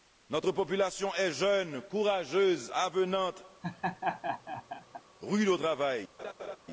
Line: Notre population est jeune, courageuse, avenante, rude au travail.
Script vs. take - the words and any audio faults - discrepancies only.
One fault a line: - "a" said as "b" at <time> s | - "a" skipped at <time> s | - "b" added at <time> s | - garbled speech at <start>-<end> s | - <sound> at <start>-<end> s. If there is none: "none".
- laugh at 3.6-5.0 s
- laugh at 6.2-6.6 s